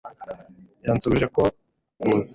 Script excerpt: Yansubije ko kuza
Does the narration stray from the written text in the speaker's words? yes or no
no